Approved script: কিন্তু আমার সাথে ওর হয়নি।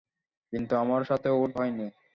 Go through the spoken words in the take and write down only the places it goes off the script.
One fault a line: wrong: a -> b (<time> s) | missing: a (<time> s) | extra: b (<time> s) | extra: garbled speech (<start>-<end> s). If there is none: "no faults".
no faults